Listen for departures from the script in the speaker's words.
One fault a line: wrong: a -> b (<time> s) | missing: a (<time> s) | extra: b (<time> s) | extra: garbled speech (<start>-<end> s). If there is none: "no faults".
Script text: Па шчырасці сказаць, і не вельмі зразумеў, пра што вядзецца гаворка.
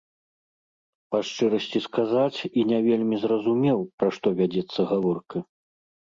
no faults